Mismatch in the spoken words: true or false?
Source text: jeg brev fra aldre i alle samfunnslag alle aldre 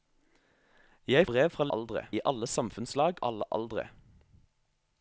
false